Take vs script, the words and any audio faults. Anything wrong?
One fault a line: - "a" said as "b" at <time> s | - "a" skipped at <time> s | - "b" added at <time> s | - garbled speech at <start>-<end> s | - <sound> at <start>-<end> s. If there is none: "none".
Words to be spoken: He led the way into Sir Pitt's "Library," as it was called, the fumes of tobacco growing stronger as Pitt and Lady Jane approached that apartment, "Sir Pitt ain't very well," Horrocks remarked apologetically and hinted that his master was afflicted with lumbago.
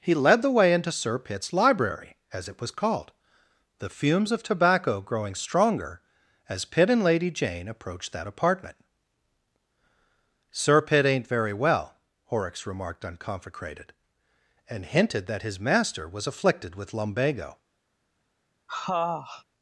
- "apologetically" said as "unconfecrated" at 13.0 s
- sniff at 18.7-19.4 s